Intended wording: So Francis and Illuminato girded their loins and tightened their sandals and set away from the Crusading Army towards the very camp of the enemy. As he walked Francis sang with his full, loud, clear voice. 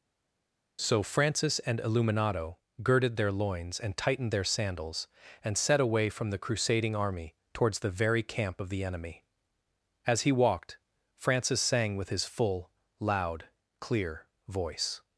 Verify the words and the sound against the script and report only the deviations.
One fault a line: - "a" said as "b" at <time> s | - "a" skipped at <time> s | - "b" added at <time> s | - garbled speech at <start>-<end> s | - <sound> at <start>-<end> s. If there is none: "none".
none